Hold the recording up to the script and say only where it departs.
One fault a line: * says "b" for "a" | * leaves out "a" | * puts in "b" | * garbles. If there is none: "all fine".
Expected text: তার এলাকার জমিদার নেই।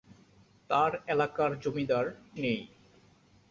all fine